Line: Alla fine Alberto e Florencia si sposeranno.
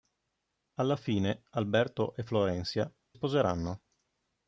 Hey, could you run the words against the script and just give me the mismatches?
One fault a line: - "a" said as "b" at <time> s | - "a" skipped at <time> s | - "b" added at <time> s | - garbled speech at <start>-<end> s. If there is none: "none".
- "si" skipped at 2.9 s